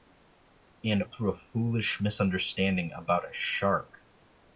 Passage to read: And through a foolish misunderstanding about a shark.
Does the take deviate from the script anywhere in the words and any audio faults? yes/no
no